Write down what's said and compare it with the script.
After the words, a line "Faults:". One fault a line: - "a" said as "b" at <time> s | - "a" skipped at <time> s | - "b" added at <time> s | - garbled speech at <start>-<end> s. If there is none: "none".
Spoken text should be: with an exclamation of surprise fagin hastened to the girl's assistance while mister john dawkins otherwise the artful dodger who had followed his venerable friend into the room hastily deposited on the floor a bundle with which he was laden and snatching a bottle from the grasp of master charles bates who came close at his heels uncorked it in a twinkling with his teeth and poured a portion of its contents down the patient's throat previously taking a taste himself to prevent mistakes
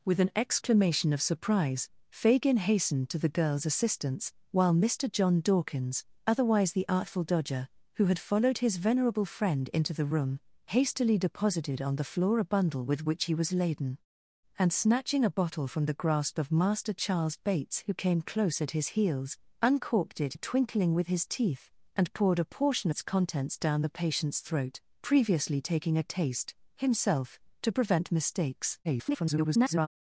with an exclamation of surprise fagin hastened to the girl's assistance while mister john dawkins otherwise the artful dodger who had followed his venerable friend into the room hastily deposited on the floor a bundle with which he was laden and snatching a bottle from the grasp of master charles bates who came close at his heels uncorked it a twinkling with his teeth and poured a portion its contents down the patient's throat previously taking a taste himself to prevent mistakes [garbled]
Faults:
- "in" skipped at 20.3 s
- "of" skipped at 22.9 s
- garbled speech at 28.8-29.9 s